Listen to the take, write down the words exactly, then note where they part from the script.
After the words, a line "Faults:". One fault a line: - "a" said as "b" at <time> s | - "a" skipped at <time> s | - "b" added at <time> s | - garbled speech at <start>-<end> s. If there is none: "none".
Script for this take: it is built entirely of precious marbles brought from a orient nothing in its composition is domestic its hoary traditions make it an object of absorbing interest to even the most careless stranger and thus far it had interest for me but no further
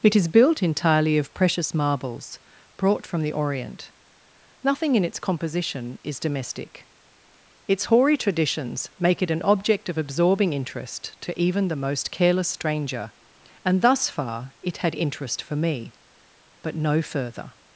it is built entirely of precious marbles brought from the orient nothing in its composition is domestic its hoary traditions make it an object of absorbing interest to even the most careless stranger and thus far it had interest for me but no further
Faults:
- "a" said as "the" at 3.2 s